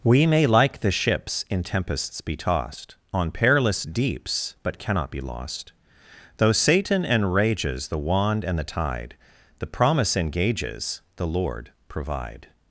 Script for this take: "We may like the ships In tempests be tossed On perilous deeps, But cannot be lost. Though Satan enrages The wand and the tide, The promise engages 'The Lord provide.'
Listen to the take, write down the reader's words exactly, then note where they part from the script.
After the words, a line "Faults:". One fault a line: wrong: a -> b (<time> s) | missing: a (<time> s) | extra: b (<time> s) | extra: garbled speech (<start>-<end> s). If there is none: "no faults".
"We may like the ships In tempests be tossed On perilous deeps, But cannot be lost. Though Satan enrages The wand and the tide, The promise engages 'The Lord provide.'
Faults:
no faults